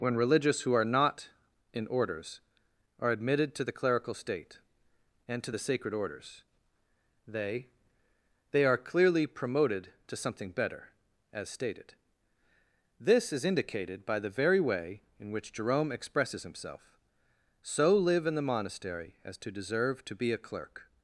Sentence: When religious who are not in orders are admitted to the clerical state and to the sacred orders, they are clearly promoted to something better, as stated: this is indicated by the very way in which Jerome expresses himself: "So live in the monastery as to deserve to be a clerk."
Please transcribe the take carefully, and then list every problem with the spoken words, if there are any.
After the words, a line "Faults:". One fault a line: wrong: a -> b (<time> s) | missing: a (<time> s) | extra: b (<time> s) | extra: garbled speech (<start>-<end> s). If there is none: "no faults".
When religious who are not in orders are admitted to the clerical state and to the sacred orders, they they are clearly promoted to something better, as stated: this is indicated by the very way in which Jerome expresses himself: "So live in the monastery as to deserve to be a clerk."
Faults:
extra: they (8.5 s)